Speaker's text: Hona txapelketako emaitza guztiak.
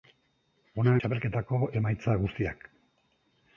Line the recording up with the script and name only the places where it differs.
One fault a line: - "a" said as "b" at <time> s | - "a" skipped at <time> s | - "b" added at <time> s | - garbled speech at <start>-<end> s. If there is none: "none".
none